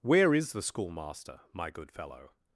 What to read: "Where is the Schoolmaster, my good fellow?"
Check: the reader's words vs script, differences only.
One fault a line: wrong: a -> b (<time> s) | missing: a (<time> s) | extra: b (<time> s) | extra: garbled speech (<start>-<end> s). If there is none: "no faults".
no faults